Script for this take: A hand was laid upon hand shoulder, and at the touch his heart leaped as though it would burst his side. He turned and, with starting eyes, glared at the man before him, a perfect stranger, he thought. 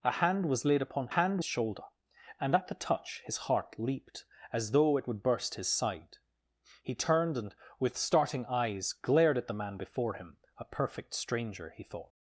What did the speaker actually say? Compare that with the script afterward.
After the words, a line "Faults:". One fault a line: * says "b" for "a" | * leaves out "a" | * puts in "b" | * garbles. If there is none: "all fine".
A hand was laid upon hand shoulder, and at the touch his heart leaped as though it would burst his side. He turned and, with starting eyes, glared at the man before him, a perfect stranger, he thought.
Faults:
all fine